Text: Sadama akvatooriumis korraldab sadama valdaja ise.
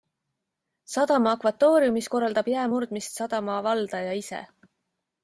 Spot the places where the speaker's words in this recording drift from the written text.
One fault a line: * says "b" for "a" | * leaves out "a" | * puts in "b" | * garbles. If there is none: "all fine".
* puts in "jää murdmist"